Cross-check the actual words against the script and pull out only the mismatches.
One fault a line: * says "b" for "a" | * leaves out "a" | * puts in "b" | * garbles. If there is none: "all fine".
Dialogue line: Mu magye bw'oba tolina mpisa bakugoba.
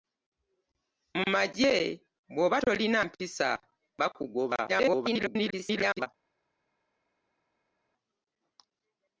* garbles